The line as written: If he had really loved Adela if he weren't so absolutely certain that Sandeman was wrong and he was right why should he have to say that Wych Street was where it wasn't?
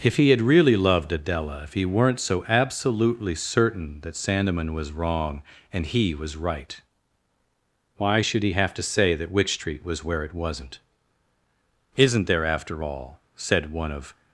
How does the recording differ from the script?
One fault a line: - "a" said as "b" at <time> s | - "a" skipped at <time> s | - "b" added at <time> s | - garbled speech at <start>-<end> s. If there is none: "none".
- "Isn't there after all said one of" added at 12.0 s